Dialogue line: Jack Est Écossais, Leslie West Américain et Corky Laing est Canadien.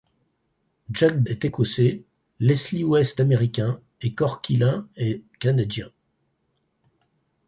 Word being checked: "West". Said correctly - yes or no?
yes